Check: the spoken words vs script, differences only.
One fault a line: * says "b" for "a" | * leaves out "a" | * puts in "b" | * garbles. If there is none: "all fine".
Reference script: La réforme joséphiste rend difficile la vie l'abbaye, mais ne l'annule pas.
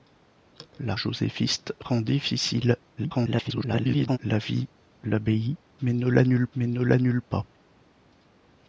* leaves out "réforme"
* garbles
* puts in "mais ne l'annule"